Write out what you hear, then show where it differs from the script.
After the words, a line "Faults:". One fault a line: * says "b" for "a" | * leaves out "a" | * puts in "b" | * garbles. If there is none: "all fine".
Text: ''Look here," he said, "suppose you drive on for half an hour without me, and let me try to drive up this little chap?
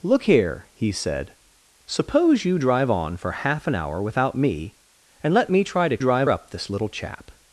''Look here," he said, "suppose you drive on for half an hour without me, and let me try to drive up this little chap?
Faults:
all fine